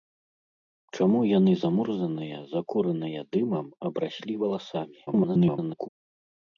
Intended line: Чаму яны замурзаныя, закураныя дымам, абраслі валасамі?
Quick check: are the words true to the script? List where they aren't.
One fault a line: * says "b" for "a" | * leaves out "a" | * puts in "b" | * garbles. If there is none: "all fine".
* garbles